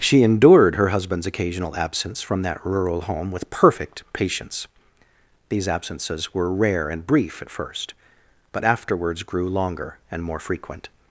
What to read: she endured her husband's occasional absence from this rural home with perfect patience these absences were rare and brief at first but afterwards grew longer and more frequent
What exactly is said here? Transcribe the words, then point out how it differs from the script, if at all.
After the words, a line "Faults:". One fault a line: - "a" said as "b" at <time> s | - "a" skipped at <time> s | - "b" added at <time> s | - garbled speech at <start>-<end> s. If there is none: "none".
she endured her husband's occasional absence from that rural home with perfect patience these absences were rare and brief at first but afterwards grew longer and more frequent
Faults:
- "this" said as "that" at 2.4 s